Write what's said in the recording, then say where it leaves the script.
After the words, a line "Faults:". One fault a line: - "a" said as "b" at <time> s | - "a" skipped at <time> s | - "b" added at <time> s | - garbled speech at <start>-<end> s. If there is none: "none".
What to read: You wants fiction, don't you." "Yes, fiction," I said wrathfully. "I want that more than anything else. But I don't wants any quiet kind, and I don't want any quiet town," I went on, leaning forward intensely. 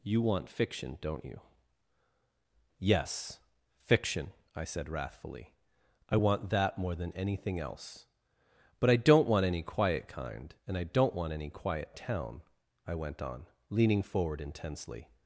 You want fiction, don't you." "Yes, fiction," I said wrathfully. "I want that more than anything else. But I don't want any quiet kind, and I don't want any quiet town," I went on, leaning forward intensely.
Faults:
- "wants" said as "want" at 0.2 s
- "wants" said as "want" at 9.3 s